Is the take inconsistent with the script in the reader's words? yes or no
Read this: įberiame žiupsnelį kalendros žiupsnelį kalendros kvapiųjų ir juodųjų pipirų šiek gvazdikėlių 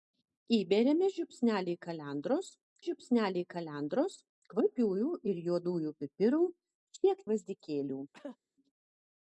no